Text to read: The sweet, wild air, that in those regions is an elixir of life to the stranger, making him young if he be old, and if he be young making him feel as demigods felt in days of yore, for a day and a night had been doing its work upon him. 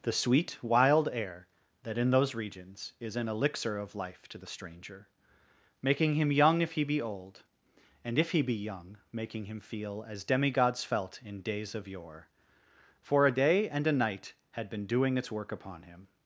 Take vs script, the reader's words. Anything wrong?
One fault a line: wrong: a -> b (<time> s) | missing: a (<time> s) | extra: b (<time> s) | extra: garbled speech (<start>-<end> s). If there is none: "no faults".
no faults